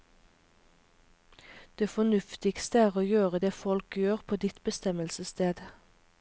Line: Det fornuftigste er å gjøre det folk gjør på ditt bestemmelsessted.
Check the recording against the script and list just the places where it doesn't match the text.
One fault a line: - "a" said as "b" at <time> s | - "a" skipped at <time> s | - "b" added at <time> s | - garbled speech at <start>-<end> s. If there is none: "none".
none